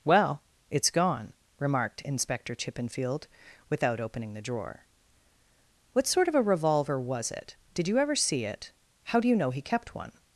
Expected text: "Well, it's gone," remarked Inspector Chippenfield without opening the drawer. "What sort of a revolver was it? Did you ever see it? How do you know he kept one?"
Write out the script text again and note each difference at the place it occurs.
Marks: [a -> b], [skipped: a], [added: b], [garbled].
"Well, it's gone," remarked Inspector Chippenfield without opening the drawer. "What sort of a revolver was it? Did you ever see it? How do you know he kept one?"